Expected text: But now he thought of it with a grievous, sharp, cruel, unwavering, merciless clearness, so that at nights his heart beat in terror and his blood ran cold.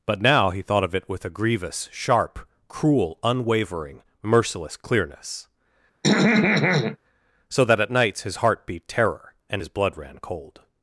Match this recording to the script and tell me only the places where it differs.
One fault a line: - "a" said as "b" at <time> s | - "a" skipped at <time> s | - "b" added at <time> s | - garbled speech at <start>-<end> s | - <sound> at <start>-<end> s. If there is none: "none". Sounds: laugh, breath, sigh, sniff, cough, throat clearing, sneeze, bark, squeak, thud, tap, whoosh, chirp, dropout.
- throat clearing at 6.0-7.0 s
- "in" skipped at 8.9 s